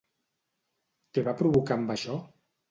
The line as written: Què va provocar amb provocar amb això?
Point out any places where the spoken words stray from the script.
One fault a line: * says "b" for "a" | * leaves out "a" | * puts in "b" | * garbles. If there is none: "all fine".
* leaves out "provocar amb"